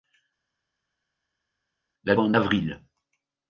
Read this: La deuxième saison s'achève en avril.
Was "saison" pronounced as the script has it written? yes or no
no